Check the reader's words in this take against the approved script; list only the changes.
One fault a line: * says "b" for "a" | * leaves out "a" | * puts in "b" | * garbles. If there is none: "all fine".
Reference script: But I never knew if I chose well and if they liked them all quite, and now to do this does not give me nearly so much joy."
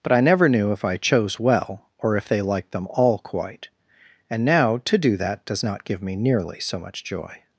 * says "or" for "and"
* says "that" for "this"